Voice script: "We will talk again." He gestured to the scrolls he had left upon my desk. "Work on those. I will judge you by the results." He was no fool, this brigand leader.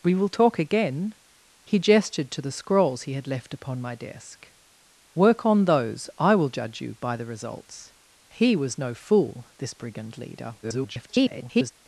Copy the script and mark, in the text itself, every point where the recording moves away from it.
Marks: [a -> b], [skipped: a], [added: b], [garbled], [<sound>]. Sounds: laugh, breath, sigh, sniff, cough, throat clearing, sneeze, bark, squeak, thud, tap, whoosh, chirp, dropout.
"We will talk again." He gestured to the scrolls he had left upon my desk. "Work on those. I will judge you by the results." He was no fool, this brigand leader. [garbled]